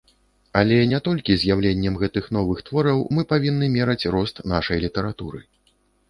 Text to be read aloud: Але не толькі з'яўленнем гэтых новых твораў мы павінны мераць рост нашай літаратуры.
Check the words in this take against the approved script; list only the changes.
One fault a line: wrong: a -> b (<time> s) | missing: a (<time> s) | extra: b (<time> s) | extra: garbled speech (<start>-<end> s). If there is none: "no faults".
no faults